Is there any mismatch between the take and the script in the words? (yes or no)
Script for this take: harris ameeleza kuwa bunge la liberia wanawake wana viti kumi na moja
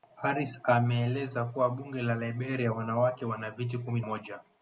yes